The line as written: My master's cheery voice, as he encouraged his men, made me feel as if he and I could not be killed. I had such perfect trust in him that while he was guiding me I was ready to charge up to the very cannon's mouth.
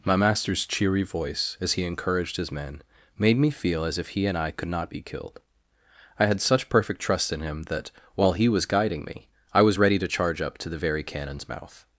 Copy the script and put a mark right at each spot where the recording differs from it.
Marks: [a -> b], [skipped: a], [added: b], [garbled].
My master's cheery voice, as he encouraged his men, made me feel as if he and I could not be killed. I had such perfect trust in him that while he was guiding me I was ready to charge up to the very cannon's mouth.